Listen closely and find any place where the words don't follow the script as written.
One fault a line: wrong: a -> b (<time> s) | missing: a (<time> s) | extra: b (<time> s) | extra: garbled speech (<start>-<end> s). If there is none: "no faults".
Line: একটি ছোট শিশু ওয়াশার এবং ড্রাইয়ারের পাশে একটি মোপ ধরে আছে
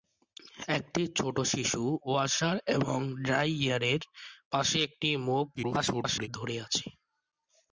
extra: garbled speech (5.6-6.3 s)